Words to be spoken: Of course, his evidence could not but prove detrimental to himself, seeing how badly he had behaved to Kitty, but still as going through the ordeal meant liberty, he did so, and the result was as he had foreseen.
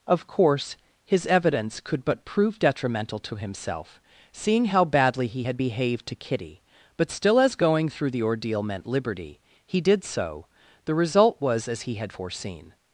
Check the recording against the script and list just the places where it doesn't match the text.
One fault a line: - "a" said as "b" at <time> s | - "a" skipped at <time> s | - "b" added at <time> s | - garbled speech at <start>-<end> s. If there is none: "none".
- "not" skipped at 2.0 s
- "and" skipped at 10.5 s